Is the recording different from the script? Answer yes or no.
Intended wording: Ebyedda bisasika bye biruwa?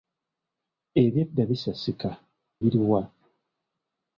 yes